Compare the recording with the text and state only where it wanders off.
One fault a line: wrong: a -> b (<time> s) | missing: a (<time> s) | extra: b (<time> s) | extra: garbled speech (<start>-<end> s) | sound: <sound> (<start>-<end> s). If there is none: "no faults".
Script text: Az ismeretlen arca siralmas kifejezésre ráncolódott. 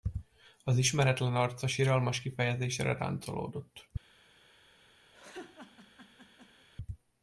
sound: laugh (5.1-6.7 s)